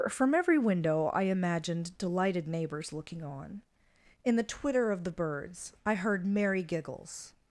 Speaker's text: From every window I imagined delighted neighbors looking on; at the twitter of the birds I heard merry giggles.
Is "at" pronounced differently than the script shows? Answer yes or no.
yes